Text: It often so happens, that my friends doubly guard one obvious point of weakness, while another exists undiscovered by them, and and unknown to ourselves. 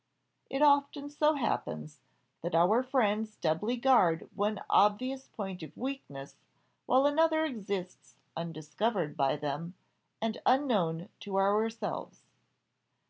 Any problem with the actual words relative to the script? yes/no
yes